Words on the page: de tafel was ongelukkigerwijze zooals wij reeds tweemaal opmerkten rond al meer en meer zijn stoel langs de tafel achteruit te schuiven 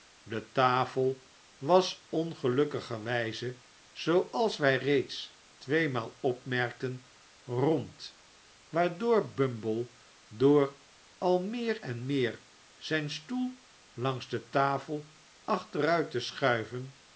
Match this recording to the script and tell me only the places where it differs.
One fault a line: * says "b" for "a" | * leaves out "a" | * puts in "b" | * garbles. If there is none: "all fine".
* puts in "waardoor bumble door"